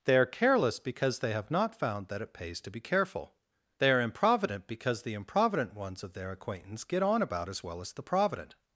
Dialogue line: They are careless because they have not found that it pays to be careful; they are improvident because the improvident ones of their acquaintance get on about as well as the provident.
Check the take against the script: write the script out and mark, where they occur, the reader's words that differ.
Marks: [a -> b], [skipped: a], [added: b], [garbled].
They are careless because they have not found that it pays to be careful; they are improvident because the improvident ones of their acquaintance get on about as well as the provident.